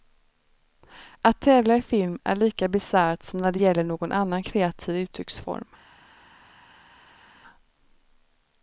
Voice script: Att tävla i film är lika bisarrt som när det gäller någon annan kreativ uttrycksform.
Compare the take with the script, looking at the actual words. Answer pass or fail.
pass